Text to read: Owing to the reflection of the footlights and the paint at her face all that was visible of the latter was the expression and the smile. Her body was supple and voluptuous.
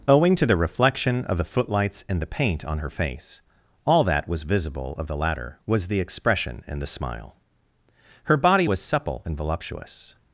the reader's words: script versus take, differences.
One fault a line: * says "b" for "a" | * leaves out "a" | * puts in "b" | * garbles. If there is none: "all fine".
* says "on" for "at"